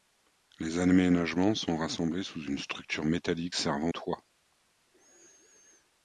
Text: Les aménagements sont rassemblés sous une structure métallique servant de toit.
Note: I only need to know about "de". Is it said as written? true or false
false